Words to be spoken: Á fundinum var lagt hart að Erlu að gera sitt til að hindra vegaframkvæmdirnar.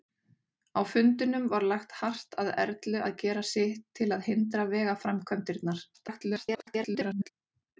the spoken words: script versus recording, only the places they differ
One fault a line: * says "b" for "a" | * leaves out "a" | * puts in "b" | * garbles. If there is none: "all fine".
* garbles